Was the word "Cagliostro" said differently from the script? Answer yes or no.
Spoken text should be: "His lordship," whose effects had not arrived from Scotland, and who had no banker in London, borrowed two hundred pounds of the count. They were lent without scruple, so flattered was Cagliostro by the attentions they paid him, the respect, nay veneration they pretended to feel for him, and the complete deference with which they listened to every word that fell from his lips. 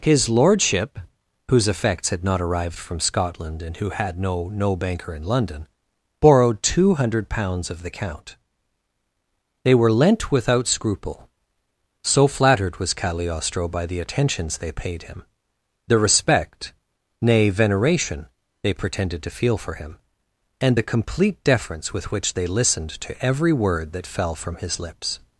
no